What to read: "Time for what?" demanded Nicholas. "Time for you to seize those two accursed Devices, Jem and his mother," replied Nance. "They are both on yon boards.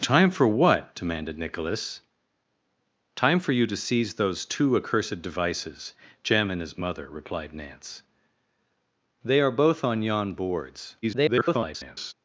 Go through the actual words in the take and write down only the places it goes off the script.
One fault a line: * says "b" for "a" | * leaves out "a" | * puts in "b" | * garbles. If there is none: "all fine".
* garbles